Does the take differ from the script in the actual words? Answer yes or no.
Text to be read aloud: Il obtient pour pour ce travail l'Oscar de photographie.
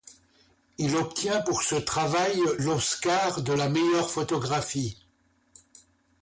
yes